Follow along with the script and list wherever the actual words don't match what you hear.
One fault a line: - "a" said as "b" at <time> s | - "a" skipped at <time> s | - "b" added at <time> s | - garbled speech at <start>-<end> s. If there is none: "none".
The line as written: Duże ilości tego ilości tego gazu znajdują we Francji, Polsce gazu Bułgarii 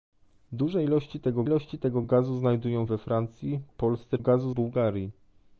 none